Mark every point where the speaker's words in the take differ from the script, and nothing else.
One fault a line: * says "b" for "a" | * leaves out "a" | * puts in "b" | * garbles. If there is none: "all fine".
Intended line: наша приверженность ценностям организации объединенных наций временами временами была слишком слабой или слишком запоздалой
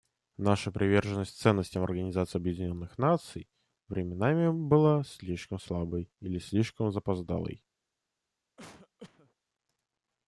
* leaves out "временами"